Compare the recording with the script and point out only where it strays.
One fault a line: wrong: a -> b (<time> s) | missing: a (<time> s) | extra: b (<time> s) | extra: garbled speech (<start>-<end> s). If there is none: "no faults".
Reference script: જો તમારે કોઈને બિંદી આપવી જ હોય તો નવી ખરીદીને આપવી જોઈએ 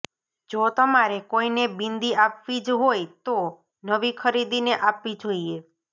no faults